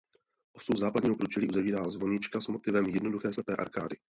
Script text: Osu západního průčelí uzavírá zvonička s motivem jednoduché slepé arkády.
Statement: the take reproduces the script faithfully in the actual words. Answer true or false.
true